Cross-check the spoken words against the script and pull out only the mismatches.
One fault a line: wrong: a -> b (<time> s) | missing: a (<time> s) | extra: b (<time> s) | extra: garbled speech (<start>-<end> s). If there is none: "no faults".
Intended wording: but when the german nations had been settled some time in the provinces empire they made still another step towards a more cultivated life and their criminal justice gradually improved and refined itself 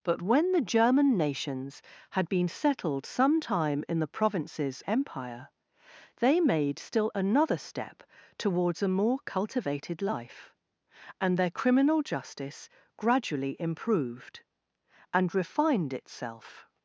no faults